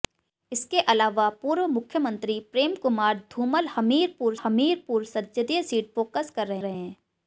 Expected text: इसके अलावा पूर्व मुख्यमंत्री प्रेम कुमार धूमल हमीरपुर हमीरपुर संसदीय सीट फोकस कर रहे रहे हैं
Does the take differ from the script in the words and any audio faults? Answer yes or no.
no